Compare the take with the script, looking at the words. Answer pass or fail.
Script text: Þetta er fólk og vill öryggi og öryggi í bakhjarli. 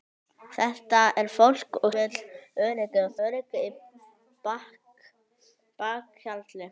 pass